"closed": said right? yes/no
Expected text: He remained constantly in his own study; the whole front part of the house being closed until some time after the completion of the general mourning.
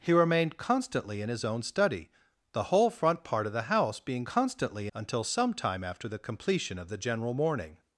no